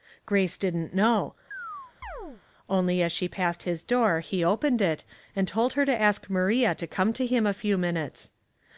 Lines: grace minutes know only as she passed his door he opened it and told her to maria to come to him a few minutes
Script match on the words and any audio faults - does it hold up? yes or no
no